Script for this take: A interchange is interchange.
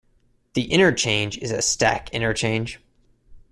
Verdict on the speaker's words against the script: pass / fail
fail